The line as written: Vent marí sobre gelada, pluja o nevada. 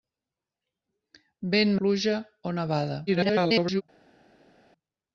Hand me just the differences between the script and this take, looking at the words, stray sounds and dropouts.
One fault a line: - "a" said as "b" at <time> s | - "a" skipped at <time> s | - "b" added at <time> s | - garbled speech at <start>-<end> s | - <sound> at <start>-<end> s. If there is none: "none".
- "marí sobre gelada" skipped at 1.8 s
- garbled speech at 3.1-3.8 s